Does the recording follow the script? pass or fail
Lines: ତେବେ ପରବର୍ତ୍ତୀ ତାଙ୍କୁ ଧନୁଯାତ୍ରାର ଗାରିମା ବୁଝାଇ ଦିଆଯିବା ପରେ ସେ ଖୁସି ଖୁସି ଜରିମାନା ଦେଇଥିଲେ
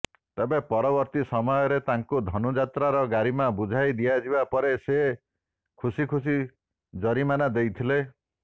fail